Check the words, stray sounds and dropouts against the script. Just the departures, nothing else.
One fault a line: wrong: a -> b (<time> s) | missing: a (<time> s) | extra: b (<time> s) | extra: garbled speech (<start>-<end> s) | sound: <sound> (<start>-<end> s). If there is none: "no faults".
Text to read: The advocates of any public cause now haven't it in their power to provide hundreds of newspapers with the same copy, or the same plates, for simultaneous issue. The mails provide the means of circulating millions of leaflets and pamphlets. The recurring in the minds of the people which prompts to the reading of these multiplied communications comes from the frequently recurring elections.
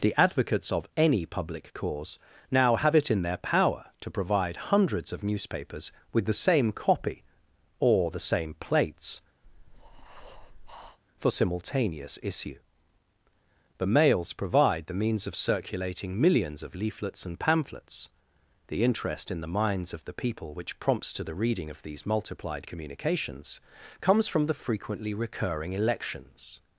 wrong: haven't -> have (2.8 s)
sound: breath (9.4-11.0 s)
wrong: recurring -> interest (18.8 s)